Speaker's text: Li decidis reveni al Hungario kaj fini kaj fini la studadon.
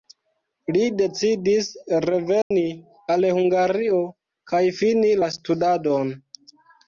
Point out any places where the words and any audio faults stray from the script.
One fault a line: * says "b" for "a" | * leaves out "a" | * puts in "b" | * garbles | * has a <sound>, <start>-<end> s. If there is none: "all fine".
* has a dropout, 2.4-2.5 s
* leaves out "kaj fini"